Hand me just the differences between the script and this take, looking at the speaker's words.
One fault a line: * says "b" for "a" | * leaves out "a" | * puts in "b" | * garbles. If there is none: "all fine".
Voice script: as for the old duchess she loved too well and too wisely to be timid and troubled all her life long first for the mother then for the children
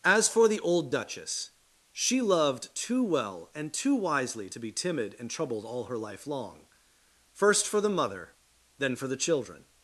all fine